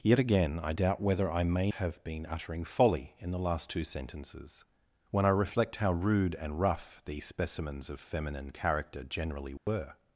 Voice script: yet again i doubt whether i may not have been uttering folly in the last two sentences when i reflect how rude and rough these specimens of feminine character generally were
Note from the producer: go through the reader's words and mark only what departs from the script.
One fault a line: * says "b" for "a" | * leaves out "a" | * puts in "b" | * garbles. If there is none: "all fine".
* leaves out "not"